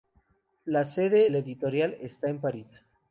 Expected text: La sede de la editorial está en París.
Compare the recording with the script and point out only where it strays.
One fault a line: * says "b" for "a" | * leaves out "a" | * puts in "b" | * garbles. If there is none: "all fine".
* leaves out "de"